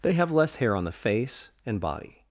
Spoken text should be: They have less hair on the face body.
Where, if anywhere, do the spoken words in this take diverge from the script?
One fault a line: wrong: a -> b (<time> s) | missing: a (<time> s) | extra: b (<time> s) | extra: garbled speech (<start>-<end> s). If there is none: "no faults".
extra: and (1.6 s)